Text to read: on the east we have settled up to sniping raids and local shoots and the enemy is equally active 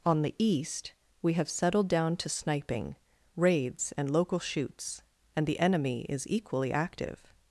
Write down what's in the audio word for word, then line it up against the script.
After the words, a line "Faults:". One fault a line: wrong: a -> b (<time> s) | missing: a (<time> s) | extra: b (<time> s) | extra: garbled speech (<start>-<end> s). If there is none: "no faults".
on the east we have settled down to sniping raids and local shoots and the enemy is equally active
Faults:
wrong: up -> down (1.9 s)